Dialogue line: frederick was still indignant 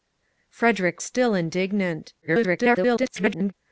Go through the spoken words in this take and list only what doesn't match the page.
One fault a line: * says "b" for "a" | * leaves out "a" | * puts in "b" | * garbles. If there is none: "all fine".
* leaves out "was"
* garbles